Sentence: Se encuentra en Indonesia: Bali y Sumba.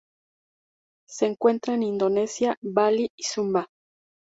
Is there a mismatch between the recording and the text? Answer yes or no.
no